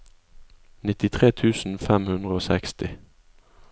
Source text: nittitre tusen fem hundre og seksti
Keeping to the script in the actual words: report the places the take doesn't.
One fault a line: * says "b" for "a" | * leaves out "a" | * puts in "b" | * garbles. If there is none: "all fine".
all fine